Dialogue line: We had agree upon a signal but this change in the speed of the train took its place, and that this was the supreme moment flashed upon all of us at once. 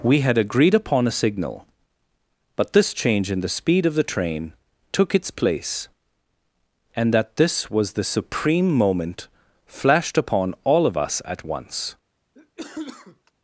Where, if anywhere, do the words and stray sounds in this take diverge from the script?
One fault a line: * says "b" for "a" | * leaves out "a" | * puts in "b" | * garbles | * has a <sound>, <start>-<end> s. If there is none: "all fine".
* says "agreed" for "agree"
* has a cough, 12.4-13.3 s